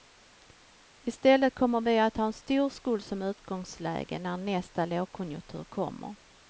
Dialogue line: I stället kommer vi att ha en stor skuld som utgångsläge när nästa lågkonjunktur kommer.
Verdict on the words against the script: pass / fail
pass